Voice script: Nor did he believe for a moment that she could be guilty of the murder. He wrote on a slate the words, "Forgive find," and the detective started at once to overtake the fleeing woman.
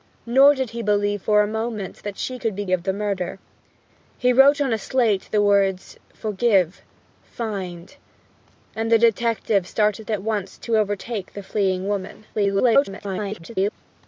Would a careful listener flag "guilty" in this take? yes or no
yes